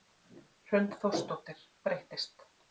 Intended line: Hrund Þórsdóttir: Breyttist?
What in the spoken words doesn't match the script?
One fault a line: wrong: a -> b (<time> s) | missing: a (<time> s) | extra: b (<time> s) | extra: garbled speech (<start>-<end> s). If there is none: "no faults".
no faults